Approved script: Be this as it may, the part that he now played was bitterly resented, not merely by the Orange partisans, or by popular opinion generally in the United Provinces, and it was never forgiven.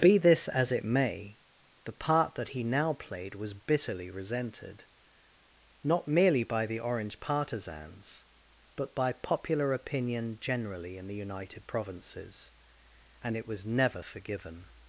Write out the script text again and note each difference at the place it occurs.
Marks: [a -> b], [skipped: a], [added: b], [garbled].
Be this as it may, the part that he now played was bitterly resented, not merely by the Orange partisans, [or -> but] by popular opinion generally in the United Provinces, and it was never forgiven.